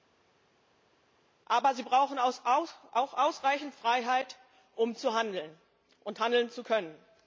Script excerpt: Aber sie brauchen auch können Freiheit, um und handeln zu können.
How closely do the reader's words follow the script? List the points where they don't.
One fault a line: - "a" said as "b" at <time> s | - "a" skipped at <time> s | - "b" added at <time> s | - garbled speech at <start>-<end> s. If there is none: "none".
- "können" said as "ausreichend" at 2.9 s
- "zu handeln" added at 4.9 s